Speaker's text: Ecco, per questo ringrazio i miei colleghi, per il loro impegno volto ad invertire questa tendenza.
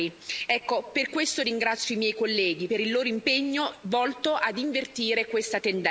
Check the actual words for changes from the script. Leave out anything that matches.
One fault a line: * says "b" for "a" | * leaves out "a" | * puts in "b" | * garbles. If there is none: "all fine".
all fine